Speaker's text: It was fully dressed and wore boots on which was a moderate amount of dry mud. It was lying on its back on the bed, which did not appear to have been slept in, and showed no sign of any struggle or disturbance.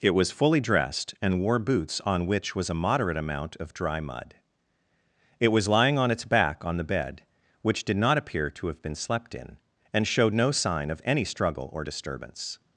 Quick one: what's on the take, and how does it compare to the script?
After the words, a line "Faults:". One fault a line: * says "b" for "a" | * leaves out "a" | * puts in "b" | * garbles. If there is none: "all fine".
It was fully dressed and wore boots on which was a moderate amount of dry mud. It was lying on its back on the bed, which did not appear to have been slept in, and showed no sign of any struggle or disturbance.
Faults:
all fine